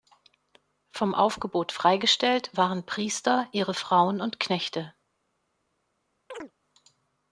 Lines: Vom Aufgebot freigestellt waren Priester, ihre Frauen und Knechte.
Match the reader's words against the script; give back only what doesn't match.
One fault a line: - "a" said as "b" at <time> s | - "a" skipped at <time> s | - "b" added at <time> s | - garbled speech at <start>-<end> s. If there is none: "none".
none